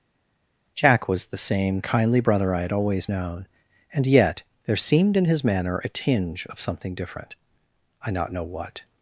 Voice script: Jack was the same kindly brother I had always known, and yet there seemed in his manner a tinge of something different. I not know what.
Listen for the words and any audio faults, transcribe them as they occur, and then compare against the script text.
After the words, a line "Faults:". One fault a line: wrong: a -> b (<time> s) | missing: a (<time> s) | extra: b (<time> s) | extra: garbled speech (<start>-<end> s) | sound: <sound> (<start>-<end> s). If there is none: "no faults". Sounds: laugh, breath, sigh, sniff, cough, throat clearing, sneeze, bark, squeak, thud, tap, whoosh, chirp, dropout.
Jack was the same kindly brother I had always known, and yet there seemed in his manner a tinge of something different. I not know what.
Faults:
no faults